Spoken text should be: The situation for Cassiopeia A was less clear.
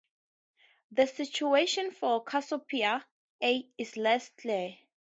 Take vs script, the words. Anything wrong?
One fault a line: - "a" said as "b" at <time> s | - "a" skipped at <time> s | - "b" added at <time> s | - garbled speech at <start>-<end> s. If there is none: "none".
- "was" said as "is" at 3.8 s